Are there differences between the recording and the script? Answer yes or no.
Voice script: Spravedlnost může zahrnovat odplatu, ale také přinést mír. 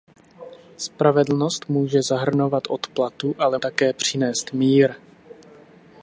no